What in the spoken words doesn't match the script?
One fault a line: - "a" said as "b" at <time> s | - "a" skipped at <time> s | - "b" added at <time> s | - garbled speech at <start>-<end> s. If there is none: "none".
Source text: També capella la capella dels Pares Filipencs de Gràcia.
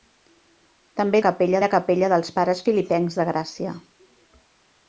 none